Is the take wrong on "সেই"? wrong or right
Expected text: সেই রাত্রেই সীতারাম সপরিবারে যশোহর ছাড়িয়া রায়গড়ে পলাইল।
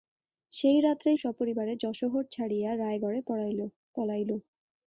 right